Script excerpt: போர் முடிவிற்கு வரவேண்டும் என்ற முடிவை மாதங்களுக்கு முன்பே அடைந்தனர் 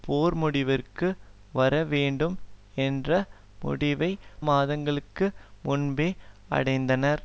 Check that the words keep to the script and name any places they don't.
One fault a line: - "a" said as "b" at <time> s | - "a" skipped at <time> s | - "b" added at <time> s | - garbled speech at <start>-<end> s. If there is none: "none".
none